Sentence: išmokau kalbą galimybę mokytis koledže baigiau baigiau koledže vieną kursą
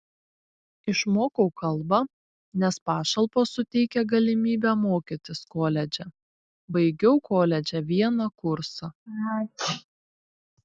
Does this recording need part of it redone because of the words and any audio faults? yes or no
yes